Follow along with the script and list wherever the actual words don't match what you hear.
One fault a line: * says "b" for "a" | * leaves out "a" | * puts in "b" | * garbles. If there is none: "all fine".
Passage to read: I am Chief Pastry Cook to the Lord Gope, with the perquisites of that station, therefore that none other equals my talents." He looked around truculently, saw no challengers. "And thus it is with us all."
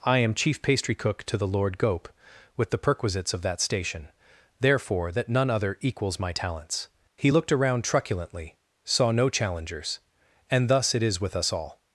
all fine